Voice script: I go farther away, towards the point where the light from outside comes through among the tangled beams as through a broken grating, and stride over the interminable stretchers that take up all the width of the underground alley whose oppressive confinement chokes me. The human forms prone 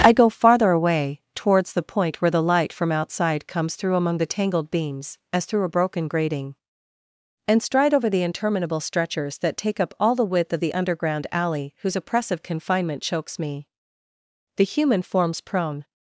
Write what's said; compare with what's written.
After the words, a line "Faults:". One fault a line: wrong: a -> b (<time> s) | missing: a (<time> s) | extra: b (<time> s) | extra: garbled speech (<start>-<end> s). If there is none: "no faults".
I go farther away, towards the point where the light from outside comes through among the tangled beams as through a broken grating, and stride over the interminable stretchers that take up all the width of the underground alley whose oppressive confinement chokes me. The human forms prone
Faults:
no faults